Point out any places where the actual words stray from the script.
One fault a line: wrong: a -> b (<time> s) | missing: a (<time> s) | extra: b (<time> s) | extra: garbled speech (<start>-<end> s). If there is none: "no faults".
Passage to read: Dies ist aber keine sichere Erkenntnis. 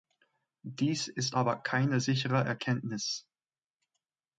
no faults